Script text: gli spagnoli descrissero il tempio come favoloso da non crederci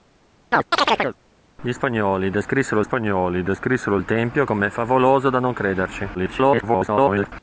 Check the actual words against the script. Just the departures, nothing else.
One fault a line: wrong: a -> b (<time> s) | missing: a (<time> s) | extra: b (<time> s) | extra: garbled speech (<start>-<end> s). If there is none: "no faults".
extra: spagnoli descrissero (2.8 s)
extra: garbled speech (6.1-7.3 s)